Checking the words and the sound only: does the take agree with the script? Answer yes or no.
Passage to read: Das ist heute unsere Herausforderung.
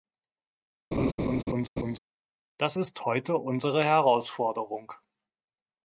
no